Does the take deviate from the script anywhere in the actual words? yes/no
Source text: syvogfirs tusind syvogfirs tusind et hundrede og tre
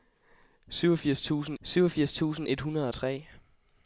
no